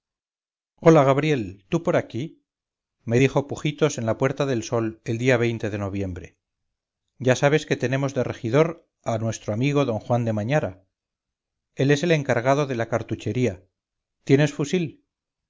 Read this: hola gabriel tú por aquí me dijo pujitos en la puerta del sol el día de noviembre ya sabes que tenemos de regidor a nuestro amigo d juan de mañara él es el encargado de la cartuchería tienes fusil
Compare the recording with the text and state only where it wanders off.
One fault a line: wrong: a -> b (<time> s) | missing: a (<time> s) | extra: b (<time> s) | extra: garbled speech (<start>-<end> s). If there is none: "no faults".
no faults